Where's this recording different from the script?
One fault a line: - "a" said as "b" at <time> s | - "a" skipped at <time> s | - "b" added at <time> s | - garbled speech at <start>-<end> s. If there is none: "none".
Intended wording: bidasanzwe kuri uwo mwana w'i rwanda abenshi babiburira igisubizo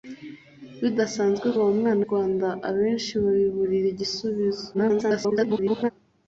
- "kuri" skipped at 1.5 s
- "w'i" skipped at 2.0 s
- garbled speech at 4.7-5.9 s